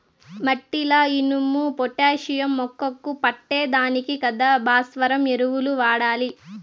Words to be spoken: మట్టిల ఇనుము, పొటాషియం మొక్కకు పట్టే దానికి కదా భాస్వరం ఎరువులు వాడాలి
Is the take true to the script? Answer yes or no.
yes